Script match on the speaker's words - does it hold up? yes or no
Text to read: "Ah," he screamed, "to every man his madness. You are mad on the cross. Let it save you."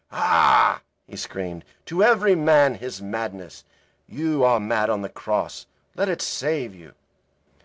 yes